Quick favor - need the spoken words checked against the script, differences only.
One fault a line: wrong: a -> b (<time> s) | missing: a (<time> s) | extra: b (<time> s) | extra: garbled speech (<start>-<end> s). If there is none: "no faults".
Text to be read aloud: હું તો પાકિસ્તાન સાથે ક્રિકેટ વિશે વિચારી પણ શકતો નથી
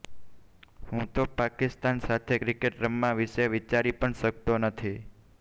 extra: રમવા (2.8 s)